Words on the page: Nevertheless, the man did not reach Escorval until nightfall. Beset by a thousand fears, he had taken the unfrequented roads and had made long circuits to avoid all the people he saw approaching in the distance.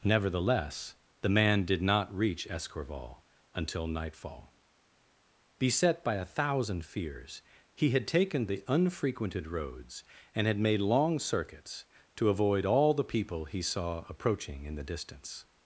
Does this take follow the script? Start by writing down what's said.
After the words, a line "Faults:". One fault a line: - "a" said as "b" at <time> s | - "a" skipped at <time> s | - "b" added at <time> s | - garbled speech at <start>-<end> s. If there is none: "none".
Nevertheless, the man did not reach Escorval until nightfall. Beset by a thousand fears, he had taken the unfrequented roads and had made long circuits to avoid all the people he saw approaching in the distance.
Faults:
none